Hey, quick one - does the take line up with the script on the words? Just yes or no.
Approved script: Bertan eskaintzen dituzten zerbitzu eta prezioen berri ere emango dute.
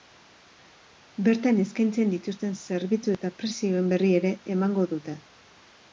yes